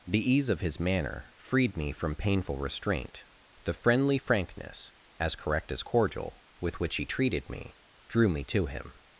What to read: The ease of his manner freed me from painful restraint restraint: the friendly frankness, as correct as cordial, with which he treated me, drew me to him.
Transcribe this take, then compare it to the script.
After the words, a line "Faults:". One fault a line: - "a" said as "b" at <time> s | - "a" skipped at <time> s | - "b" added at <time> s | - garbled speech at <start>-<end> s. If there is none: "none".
The ease of his manner freed me from painful restraint: the friendly frankness, as correct as cordial, with which he treated me, drew me to him.
Faults:
- "restraint" skipped at 3.2 s